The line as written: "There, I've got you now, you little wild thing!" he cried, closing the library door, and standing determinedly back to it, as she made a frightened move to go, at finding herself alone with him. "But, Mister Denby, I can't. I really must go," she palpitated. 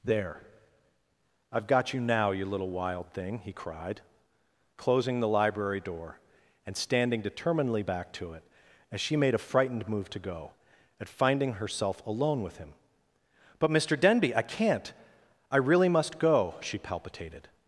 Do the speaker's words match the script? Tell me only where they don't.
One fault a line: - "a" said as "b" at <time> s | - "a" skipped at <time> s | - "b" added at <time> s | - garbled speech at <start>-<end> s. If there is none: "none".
none